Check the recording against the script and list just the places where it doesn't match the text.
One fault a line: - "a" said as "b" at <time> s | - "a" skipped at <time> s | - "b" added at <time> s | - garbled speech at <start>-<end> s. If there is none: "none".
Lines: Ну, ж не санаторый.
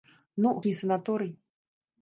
none